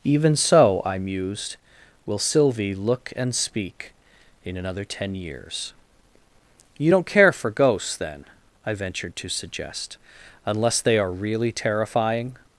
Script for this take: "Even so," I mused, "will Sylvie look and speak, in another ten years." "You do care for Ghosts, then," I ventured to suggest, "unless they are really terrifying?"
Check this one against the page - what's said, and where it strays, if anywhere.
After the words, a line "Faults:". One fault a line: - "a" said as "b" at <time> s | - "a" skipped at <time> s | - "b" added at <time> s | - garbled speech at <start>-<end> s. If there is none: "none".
"Even so," I mused, "will Sylvie look and speak, in another ten years." "You don't care for Ghosts, then," I ventured to suggest, "unless they are really terrifying?"
Faults:
- "do" said as "don't" at 6.9 s